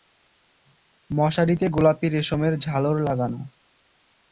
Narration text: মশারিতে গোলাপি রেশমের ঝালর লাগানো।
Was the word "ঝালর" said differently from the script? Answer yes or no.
no